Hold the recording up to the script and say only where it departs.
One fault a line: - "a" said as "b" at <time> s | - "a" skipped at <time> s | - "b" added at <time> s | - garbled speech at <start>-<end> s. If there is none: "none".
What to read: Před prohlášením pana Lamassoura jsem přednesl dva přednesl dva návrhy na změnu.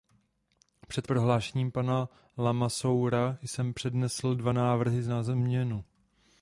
- "přednesl dva" skipped at 4.5 s